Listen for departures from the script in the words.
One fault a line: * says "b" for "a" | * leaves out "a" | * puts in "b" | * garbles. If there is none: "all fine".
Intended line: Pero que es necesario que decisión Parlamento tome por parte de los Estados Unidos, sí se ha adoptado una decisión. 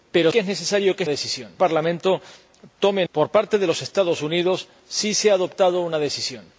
all fine